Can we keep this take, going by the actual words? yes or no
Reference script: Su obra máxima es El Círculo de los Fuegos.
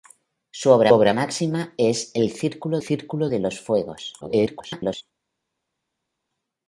no